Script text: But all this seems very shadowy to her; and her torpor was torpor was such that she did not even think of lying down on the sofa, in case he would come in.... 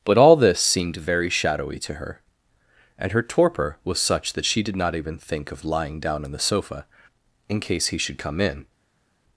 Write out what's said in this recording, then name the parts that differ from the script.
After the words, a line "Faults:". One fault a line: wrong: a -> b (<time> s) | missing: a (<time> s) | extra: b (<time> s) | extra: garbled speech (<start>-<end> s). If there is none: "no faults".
But all this seemed very shadowy to her; and her torpor was such that she did not even think of lying down on the sofa, in case he should come in....
Faults:
wrong: seems -> seemed (0.6 s)
missing: torpor was (4.0 s)
wrong: would -> should (8.0 s)